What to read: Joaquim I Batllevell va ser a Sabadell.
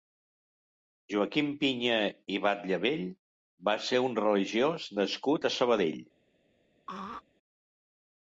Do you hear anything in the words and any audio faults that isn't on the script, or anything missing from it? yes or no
yes